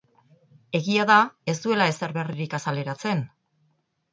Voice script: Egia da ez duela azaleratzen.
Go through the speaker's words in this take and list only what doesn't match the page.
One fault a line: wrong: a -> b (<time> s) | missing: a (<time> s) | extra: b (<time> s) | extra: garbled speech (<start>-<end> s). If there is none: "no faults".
extra: ezer berririk (1.9 s)